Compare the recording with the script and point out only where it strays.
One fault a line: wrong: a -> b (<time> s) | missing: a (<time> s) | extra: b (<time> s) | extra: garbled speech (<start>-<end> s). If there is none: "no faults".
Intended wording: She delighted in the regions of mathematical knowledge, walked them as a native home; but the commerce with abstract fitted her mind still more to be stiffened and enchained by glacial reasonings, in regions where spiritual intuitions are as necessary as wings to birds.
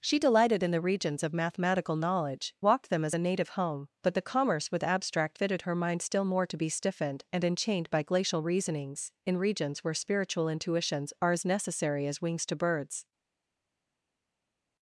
no faults